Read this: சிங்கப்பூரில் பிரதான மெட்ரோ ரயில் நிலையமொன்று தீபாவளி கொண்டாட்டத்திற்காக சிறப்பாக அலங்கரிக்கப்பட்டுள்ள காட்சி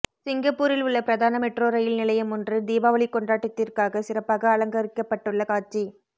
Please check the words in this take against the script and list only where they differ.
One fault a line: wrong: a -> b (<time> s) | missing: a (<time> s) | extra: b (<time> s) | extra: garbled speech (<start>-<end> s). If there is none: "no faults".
extra: உள்ள (0.8 s)